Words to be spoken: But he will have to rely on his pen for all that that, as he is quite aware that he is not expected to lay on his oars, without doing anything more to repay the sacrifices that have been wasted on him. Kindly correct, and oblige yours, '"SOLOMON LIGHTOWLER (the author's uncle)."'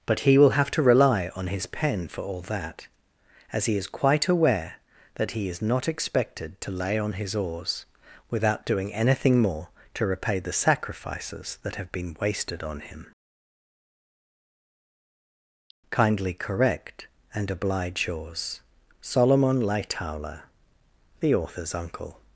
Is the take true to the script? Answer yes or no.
no